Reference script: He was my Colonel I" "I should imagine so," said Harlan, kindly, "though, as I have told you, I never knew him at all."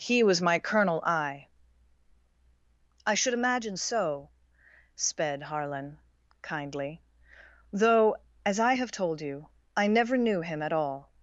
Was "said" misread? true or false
true